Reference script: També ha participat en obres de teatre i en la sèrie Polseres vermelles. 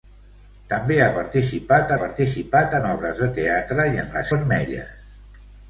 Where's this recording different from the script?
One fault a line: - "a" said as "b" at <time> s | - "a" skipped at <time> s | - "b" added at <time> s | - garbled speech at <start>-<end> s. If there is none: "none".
- "participat" added at 2.0 s
- "sèrie Polseres" skipped at 4.3 s